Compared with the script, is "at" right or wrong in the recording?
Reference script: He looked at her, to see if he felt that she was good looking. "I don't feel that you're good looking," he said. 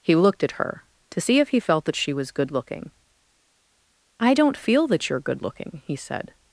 right